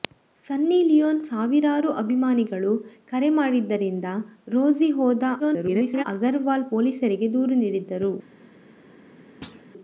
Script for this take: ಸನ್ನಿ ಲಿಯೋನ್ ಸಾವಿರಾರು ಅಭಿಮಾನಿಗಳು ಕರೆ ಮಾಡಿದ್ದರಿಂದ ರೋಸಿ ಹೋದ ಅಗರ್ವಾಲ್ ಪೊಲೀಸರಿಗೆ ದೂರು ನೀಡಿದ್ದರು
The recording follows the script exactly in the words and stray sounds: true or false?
false